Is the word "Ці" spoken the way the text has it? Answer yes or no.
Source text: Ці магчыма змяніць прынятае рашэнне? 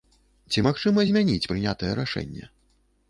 yes